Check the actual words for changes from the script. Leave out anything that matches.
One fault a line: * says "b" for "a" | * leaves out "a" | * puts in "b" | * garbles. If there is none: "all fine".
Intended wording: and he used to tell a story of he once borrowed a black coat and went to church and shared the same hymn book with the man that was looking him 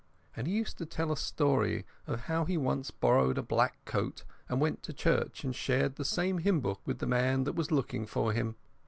* puts in "how"
* puts in "for"